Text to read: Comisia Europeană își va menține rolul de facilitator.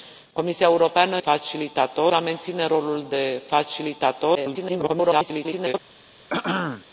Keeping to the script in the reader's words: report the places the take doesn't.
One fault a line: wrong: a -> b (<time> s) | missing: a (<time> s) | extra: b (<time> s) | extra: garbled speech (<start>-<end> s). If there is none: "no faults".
wrong: își -> facilitator (1.2 s)
extra: garbled speech (4.3-5.7 s)